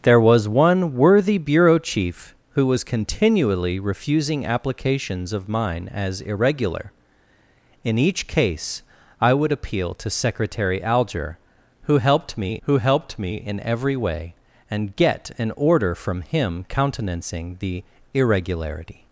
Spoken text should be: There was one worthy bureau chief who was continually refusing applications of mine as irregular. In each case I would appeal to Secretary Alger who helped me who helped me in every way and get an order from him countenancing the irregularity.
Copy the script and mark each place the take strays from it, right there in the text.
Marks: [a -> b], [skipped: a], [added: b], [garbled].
There was one worthy bureau chief who was continually refusing applications of mine as irregular. In each case I would appeal to Secretary Alger who helped me who helped me in every way and get an order from him countenancing the irregularity.